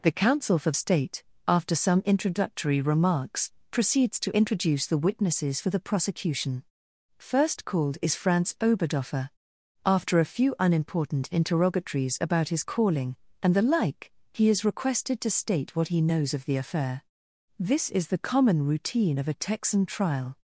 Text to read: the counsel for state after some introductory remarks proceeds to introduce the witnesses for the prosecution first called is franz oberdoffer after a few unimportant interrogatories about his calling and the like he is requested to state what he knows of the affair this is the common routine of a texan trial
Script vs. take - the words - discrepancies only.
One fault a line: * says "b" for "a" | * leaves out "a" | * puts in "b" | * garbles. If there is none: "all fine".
all fine